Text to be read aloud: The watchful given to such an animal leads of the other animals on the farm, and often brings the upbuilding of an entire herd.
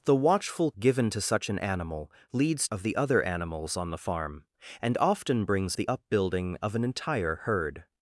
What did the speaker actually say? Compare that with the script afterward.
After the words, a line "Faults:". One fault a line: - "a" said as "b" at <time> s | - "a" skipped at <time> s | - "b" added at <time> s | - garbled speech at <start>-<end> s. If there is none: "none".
The watchful given to such an animal leads of the other animals on the farm, and often brings the upbuilding of an entire herd.
Faults:
none